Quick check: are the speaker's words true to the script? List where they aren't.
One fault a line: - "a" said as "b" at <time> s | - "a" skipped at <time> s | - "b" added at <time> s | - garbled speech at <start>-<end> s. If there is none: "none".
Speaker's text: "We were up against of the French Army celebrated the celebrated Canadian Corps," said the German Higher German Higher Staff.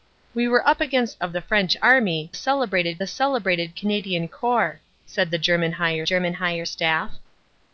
none